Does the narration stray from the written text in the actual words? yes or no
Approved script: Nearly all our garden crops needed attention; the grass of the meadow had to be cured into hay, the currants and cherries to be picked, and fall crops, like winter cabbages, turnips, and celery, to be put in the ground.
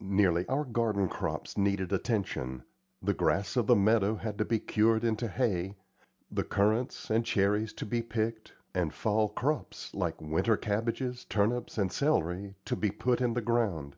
yes